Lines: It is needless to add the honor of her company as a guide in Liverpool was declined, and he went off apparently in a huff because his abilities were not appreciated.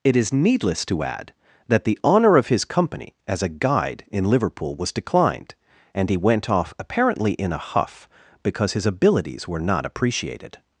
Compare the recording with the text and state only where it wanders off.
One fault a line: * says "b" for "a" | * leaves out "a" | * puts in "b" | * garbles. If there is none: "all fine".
* puts in "that"
* says "his" for "her"